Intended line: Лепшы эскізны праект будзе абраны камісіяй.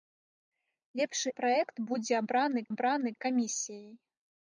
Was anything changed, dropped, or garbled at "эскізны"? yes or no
yes